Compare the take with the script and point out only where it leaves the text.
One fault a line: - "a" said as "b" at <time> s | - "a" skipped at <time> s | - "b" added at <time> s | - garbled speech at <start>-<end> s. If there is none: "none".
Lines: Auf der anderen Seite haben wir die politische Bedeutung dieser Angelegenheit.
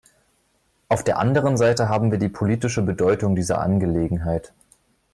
none